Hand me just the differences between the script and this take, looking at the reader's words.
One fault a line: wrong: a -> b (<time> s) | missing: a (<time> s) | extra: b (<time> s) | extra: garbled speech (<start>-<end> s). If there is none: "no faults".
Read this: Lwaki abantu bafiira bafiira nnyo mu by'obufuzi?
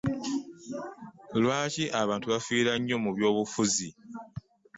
missing: bafiira (2.7 s)